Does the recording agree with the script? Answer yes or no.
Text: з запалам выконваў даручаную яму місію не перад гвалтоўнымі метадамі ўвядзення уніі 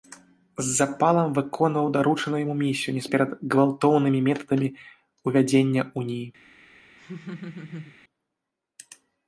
yes